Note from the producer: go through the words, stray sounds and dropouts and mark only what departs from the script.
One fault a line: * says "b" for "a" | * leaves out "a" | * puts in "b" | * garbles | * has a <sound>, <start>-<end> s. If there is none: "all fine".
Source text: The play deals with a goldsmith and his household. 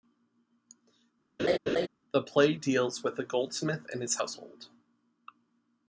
* has a laugh, 1.4-1.9 s